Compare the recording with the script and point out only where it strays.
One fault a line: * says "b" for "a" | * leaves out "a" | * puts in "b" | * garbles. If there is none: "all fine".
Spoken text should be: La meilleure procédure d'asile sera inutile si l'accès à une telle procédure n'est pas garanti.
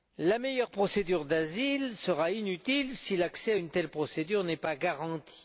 all fine